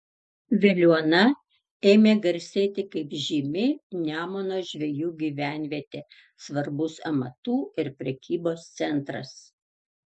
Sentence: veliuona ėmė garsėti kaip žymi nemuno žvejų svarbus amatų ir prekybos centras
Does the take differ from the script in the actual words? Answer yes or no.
yes